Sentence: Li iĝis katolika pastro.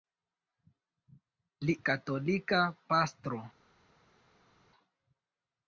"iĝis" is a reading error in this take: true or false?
true